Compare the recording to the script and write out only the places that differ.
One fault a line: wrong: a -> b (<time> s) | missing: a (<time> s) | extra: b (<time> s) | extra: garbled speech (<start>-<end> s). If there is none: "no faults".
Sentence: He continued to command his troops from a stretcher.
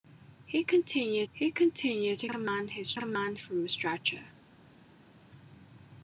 extra: he continued (1.3 s)
wrong: troops -> command (2.9 s)